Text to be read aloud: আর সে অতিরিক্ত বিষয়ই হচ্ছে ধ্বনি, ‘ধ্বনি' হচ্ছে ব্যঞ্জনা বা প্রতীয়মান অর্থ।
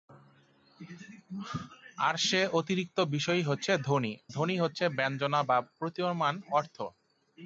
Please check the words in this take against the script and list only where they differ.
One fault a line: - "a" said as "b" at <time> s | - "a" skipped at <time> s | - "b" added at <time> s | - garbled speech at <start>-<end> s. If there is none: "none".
none